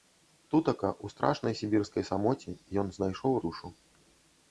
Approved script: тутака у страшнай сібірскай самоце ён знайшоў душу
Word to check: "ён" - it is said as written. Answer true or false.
true